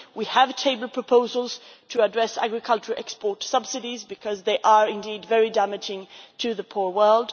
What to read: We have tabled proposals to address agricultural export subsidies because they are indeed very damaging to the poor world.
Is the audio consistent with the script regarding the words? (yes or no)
yes